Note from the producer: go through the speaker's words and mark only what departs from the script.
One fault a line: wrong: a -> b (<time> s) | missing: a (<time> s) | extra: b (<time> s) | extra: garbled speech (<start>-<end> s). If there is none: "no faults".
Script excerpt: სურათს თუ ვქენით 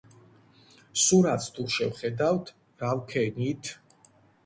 extra: შევხედავთ რა (1.8 s)